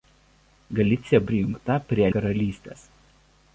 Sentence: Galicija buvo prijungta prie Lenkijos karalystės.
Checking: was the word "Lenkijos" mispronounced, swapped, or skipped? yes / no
yes